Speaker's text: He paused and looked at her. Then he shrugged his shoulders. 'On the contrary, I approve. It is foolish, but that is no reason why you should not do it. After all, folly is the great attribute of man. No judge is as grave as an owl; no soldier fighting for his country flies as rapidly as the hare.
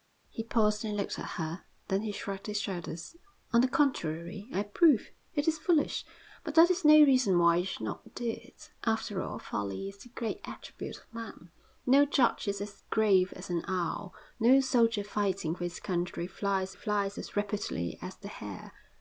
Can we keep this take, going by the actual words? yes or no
no